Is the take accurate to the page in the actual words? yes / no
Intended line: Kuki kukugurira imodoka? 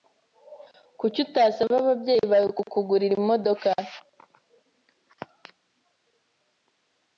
no